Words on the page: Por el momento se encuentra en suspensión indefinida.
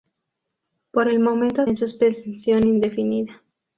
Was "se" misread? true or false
true